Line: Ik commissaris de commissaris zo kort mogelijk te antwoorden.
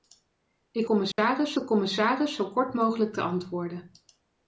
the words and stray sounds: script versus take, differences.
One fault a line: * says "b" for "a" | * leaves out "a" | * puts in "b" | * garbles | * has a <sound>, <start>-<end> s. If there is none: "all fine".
* has a dropout, 1.1-1.2 s